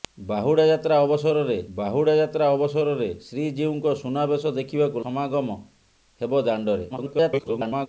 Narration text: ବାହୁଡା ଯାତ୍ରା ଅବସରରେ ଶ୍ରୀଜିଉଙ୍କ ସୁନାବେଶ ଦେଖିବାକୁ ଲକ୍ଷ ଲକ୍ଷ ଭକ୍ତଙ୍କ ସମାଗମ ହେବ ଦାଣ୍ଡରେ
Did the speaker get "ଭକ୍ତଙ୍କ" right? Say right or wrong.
wrong